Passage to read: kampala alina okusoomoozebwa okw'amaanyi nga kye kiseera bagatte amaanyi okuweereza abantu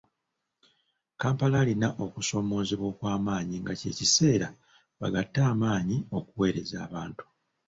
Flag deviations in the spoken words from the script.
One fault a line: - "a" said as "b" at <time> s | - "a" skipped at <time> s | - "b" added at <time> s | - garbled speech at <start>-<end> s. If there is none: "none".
none